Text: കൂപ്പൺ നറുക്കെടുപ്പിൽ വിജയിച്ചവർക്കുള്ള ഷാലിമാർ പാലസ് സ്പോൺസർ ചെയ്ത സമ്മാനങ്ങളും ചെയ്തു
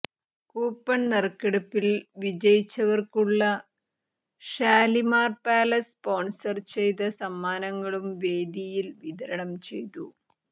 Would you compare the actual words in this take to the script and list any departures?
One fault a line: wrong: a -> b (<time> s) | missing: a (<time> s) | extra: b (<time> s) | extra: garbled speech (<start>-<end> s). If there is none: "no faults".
extra: വേദിയിൽ വിതരണം (8.2 s)